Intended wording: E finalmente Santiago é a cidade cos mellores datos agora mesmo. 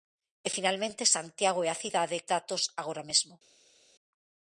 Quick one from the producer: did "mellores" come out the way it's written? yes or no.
no